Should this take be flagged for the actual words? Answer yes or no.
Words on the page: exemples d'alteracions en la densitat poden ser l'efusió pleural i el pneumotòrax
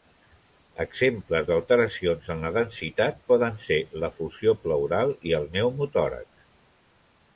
no